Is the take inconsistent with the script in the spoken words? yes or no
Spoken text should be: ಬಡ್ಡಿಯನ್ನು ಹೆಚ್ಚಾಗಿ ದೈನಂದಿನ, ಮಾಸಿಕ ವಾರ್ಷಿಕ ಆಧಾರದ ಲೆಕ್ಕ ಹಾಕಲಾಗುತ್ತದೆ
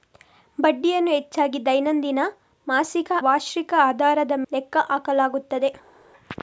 no